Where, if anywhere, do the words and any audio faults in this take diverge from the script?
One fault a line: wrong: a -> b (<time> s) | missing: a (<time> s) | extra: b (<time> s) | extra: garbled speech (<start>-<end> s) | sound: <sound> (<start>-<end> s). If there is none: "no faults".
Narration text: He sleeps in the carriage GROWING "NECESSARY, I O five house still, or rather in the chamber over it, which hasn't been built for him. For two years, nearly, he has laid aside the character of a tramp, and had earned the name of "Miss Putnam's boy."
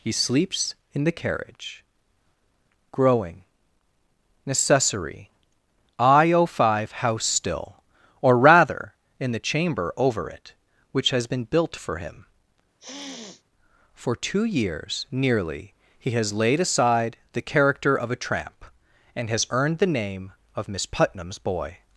wrong: hasn't -> has (11.1 s)
sound: sniff (12.8-13.4 s)
wrong: had -> has (19.3 s)